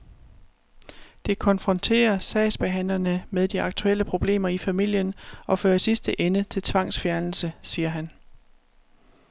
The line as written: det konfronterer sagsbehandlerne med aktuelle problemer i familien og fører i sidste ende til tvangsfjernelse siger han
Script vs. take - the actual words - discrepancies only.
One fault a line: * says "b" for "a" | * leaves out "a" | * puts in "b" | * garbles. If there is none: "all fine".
* puts in "de"